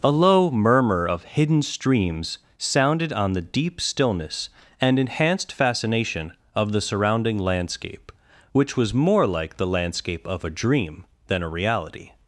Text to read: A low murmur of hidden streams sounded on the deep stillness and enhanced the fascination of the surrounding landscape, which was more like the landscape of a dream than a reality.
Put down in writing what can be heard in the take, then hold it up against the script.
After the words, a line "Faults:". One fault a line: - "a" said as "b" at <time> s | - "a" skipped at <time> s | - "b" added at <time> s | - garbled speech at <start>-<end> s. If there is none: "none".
A low murmur of hidden streams sounded on the deep stillness and enhanced fascination of the surrounding landscape, which was more like the landscape of a dream than a reality.
Faults:
- "the" skipped at 5.5 s